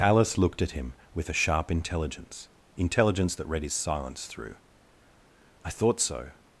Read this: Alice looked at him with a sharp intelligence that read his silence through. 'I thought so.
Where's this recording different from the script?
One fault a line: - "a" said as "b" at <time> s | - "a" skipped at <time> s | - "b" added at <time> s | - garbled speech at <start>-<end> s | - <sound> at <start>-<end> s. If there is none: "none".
- "intelligence" added at 2.8 s